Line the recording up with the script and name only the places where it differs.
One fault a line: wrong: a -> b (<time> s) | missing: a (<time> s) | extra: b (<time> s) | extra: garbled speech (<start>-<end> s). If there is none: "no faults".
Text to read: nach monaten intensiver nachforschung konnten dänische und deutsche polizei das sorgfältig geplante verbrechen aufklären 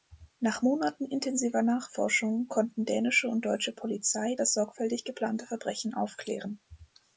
no faults